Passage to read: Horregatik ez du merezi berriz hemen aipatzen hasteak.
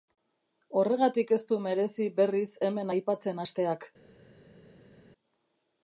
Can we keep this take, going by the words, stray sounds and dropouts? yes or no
yes